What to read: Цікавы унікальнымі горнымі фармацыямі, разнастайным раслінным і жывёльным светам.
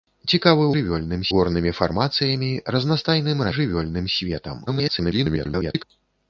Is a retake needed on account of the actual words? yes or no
yes